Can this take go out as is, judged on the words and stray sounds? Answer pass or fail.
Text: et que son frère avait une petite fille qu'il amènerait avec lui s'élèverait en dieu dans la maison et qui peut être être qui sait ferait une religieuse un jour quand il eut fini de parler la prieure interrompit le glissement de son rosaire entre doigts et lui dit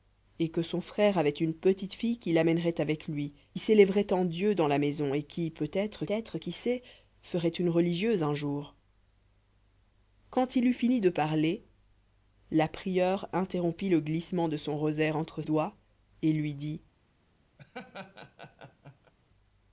fail